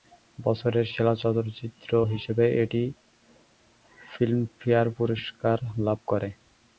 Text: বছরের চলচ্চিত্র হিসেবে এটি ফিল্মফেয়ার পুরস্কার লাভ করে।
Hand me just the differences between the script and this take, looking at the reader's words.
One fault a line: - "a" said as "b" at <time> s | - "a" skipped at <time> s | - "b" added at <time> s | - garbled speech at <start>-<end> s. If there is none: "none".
- "সেরা" added at 0.8 s